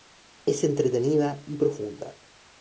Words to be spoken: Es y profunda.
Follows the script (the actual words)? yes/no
no